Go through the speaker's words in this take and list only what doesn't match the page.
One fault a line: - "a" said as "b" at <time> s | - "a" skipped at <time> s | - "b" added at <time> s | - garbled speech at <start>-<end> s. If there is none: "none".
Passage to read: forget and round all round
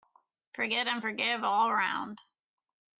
- "round" said as "forgive" at 1.0 s